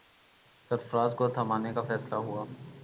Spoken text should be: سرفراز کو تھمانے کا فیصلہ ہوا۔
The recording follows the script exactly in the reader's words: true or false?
true